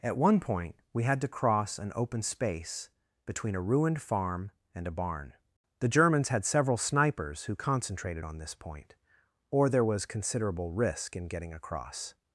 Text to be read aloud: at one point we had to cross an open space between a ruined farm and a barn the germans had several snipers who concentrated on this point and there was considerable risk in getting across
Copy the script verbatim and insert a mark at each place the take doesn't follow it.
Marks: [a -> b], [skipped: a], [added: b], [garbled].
at one point we had to cross an open space between a ruined farm and a barn the germans had several snipers who concentrated on this point [and -> or] there was considerable risk in getting across